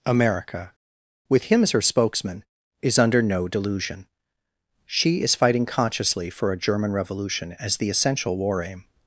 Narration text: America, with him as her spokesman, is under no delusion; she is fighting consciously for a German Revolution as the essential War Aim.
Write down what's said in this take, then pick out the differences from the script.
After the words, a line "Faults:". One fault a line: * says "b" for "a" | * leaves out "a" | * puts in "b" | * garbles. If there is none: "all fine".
America, with him as her spokesman, is under no delusion; she is fighting consciously for a German Revolution as the essential War Aim.
Faults:
all fine